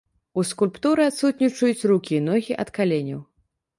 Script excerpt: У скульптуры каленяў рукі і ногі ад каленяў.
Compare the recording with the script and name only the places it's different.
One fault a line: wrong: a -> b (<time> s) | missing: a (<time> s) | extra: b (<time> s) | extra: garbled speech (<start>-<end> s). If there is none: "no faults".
wrong: каленяў -> адсутнічаюць (1.1 s)